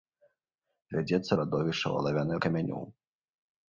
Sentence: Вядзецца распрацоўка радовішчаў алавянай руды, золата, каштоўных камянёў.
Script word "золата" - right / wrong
wrong